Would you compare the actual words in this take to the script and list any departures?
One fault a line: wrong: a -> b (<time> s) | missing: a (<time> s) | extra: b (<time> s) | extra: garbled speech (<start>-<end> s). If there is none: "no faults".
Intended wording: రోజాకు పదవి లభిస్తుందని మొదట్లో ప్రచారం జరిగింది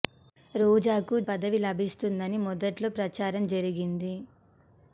no faults